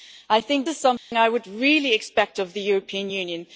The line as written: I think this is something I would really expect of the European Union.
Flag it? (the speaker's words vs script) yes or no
yes